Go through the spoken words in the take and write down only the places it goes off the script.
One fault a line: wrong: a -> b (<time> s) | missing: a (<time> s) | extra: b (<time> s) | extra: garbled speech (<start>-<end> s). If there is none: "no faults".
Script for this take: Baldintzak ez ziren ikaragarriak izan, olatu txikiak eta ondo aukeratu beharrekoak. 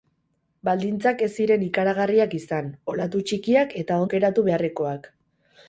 missing: ondo (4.0 s)